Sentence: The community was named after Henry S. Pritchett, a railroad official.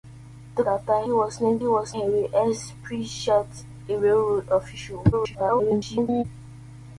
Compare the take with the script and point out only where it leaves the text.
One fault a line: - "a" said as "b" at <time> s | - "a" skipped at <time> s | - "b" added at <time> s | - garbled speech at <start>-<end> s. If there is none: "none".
- "community" said as "after" at 0.7 s
- "after" said as "was" at 1.6 s
- garbled speech at 5.1-6.2 s